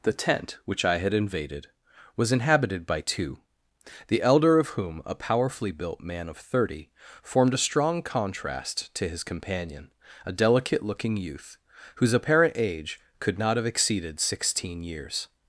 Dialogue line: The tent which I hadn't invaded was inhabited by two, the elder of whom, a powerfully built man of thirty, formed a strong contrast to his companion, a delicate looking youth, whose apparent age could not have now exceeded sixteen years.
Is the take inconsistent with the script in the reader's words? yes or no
yes